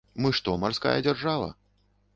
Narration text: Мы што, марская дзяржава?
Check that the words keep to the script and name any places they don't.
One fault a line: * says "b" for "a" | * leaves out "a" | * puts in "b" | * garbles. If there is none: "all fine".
all fine